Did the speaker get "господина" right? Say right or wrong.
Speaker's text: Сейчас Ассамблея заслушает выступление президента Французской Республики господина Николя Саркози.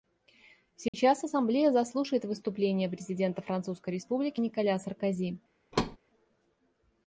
wrong